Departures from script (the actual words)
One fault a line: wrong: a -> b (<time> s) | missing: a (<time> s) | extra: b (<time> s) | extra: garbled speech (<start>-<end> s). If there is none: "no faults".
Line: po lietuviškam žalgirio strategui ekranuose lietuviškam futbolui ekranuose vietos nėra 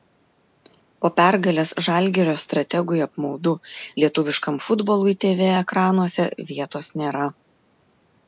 wrong: lietuviškam -> pergalės (1.2 s)
wrong: ekranuose -> apmaudu (3.1 s)
extra: tv (5.3 s)